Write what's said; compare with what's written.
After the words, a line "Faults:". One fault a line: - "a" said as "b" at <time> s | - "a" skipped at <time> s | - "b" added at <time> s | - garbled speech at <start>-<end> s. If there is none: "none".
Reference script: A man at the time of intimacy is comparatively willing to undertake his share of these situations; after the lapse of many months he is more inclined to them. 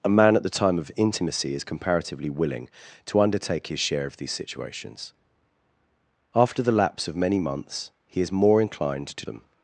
A man at the time of intimacy is comparatively willing to undertake his share of these situations; after the lapse of many months he is more inclined to them.
Faults:
none